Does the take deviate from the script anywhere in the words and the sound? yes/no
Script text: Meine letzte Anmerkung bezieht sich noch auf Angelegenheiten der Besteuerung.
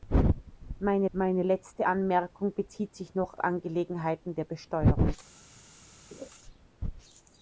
yes